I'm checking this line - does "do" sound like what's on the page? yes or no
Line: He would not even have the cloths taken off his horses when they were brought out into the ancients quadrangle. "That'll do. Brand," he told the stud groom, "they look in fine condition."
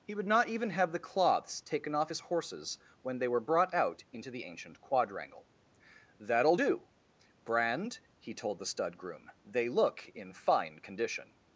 yes